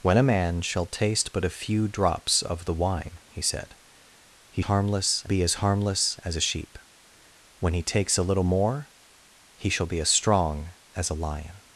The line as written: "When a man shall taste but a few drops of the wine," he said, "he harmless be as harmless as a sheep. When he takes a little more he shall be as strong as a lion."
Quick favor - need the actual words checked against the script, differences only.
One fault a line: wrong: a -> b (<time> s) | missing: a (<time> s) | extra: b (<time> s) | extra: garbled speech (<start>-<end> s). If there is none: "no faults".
no faults